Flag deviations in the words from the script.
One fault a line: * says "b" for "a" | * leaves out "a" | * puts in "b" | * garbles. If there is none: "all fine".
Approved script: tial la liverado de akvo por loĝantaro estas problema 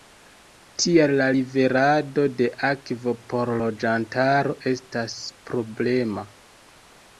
all fine